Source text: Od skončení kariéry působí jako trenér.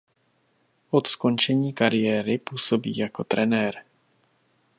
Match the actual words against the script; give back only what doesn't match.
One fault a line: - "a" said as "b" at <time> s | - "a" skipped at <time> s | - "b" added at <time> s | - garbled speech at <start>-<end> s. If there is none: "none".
none